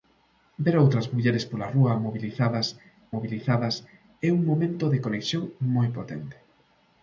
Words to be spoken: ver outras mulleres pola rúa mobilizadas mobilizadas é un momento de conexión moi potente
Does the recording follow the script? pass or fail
pass